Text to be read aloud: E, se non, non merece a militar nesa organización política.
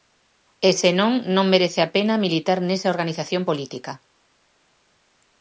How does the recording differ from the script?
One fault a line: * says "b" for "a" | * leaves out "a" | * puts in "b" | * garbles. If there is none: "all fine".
* puts in "pena"